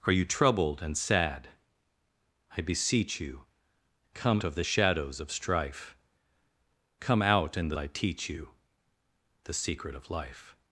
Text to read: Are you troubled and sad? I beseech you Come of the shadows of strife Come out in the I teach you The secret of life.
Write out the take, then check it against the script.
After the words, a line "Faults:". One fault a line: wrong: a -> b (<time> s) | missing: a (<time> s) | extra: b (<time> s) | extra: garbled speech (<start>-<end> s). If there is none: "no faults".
Are you troubled and sad? I beseech you Come of the shadows of strife Come out in the I teach you The secret of life.
Faults:
no faults